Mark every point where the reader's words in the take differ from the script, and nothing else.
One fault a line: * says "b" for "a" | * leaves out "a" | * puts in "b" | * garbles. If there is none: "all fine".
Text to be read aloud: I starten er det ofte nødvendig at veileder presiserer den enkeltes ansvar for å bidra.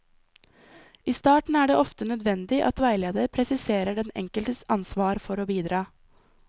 all fine